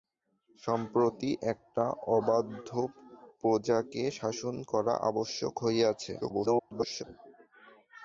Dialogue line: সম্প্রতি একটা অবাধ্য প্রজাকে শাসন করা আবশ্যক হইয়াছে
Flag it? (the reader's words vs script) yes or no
yes